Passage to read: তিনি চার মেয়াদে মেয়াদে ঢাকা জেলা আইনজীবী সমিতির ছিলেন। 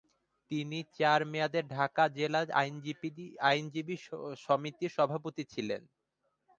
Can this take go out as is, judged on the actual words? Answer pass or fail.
fail